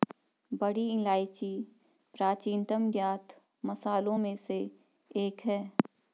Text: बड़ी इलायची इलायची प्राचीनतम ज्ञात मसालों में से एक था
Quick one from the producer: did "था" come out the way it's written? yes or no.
no